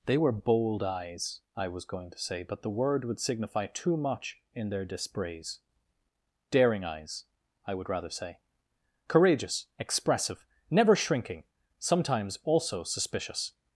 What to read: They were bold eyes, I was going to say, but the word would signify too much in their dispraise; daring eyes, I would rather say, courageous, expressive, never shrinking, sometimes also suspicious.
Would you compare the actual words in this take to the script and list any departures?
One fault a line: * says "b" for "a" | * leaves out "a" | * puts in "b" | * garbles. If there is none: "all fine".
all fine